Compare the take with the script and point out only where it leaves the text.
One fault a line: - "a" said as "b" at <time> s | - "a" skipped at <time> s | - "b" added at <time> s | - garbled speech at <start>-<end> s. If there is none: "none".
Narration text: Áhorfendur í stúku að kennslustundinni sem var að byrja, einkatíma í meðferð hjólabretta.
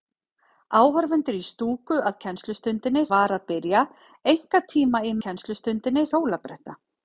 - "sem" skipped at 3.0 s
- "meðferð" said as "kennslustundinni" at 5.3 s